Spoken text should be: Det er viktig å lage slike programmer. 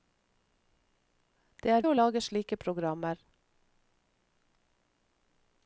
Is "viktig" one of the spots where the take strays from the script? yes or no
yes